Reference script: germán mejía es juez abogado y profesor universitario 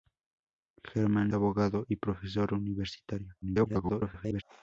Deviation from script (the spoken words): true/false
true